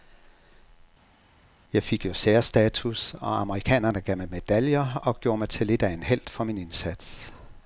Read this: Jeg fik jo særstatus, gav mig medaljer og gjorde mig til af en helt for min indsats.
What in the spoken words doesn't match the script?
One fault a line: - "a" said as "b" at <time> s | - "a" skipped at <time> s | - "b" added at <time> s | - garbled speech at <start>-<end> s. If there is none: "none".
- "og amerikanerne" added at 3.1 s
- "lidt" added at 5.7 s